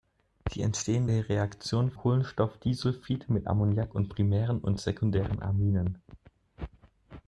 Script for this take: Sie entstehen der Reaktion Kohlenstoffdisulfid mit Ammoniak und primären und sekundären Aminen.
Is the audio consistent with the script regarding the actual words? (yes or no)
yes